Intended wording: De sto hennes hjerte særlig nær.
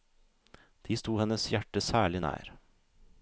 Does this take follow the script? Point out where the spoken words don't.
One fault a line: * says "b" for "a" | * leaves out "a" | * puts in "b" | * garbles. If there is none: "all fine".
all fine